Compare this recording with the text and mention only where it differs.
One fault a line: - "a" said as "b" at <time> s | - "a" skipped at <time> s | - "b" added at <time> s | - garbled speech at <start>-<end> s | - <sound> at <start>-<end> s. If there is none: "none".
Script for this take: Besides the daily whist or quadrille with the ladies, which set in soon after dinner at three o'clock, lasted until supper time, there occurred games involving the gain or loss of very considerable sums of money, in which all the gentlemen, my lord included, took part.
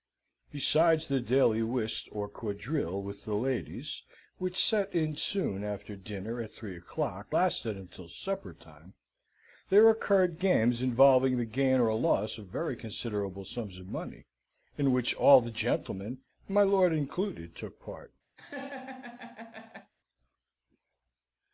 - laugh at 18.4-19.9 s